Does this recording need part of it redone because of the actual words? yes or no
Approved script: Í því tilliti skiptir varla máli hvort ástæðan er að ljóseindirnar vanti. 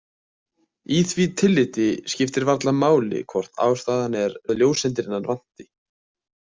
no